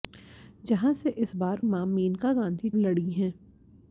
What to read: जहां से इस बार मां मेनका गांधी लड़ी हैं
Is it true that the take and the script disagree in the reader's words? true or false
false